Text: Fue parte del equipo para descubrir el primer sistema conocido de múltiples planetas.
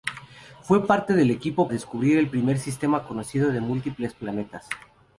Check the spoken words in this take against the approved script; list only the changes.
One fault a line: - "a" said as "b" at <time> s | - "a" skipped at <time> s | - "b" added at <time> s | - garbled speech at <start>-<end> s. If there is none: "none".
- "para" skipped at 1.7 s